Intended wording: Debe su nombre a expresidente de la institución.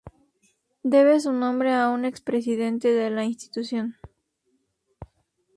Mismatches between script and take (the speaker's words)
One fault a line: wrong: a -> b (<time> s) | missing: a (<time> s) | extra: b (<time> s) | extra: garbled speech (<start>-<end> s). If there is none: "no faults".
extra: un (1.9 s)